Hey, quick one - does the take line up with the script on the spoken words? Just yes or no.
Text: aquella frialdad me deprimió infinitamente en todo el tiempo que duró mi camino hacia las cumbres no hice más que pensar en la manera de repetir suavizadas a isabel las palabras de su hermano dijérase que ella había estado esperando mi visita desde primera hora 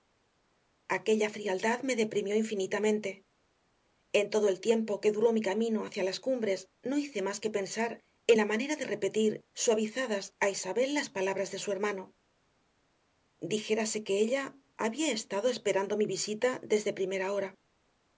yes